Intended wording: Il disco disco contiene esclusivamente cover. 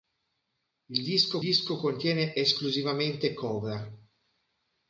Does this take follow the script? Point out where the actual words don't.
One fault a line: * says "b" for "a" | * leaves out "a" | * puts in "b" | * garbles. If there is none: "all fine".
all fine